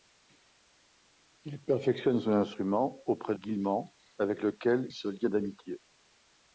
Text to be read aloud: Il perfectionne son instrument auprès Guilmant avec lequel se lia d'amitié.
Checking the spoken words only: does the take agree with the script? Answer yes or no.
yes